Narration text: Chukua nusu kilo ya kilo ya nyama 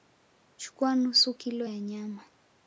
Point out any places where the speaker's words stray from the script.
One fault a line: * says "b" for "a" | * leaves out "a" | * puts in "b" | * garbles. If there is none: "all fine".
* leaves out "kilo ya"